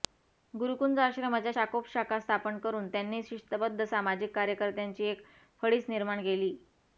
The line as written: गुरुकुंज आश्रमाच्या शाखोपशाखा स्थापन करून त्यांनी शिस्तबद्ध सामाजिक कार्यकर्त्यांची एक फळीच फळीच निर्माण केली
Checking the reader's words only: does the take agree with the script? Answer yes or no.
no